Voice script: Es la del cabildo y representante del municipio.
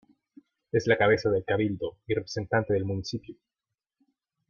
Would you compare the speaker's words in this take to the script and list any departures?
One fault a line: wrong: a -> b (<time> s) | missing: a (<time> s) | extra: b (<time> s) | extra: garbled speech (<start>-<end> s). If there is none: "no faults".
extra: cabeza (1.0 s)